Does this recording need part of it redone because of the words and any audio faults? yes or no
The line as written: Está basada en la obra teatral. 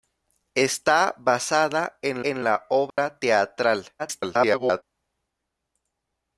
yes